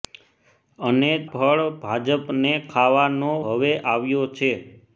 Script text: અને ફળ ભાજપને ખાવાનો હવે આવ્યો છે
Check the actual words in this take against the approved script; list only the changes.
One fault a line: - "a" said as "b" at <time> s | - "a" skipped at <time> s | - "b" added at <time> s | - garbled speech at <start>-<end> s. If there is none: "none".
none